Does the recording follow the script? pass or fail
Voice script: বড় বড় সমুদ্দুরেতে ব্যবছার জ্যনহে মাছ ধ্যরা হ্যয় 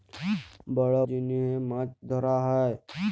fail